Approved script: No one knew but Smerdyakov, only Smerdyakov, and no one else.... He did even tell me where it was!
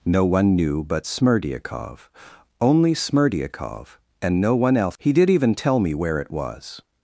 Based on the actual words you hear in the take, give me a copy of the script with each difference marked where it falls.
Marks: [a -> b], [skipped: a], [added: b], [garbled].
No one knew but Smerdyakov, only Smerdyakov, and no one else.... He did even tell me where it was!